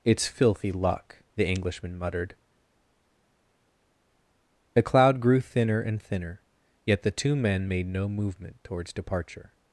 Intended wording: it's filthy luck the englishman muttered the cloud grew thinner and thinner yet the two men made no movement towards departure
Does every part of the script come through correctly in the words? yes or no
yes